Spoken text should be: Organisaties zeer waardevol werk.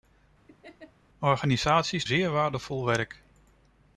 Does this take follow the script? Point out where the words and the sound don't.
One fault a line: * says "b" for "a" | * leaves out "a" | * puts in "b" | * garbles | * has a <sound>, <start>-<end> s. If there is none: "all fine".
* has a laugh, 0.5-0.9 s